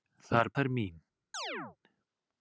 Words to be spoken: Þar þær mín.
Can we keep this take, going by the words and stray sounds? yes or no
no